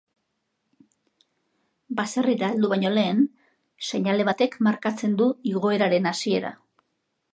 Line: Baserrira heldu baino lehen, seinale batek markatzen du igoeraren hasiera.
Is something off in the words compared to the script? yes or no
no